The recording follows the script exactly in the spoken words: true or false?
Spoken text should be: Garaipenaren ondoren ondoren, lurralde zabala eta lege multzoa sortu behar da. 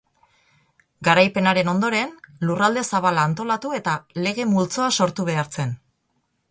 false